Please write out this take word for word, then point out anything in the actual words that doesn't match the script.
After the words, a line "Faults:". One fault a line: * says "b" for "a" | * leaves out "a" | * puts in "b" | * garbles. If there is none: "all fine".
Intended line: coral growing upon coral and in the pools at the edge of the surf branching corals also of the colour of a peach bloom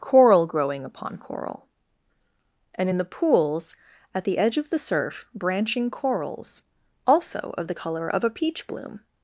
coral growing upon coral and in the pools at the edge of the surf branching corals also of the colour of a peach bloom
Faults:
all fine